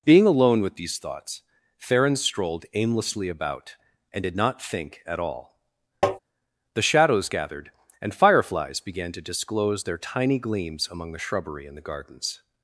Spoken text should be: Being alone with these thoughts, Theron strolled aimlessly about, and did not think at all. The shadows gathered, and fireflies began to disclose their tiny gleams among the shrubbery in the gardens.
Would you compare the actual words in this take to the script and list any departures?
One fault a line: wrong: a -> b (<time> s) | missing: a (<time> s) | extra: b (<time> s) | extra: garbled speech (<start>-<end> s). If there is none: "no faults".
no faults